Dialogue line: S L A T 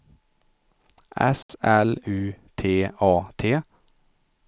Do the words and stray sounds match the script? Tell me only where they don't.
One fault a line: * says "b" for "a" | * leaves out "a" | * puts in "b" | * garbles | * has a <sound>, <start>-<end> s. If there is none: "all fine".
* has a dropout, 1.4-1.5 s
* puts in "U T"